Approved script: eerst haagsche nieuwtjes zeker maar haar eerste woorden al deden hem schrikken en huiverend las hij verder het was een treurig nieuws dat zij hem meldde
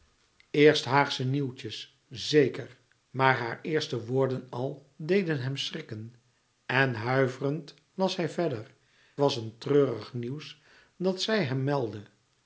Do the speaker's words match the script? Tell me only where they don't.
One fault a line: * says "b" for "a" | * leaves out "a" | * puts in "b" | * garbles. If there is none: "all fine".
* leaves out "het"